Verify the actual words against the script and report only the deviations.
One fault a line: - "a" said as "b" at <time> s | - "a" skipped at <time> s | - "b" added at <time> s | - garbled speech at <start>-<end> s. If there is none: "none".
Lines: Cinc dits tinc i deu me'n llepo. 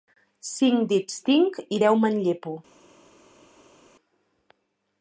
none